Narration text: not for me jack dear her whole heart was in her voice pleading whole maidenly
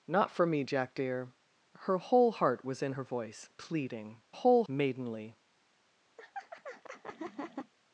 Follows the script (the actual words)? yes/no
yes